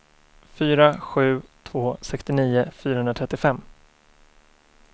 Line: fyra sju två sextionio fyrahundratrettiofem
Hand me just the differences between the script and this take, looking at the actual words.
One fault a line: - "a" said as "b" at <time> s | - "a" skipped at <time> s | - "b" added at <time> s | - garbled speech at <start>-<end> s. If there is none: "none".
none